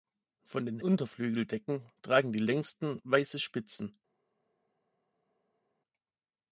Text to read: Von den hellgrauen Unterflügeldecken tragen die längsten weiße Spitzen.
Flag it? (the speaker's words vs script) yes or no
yes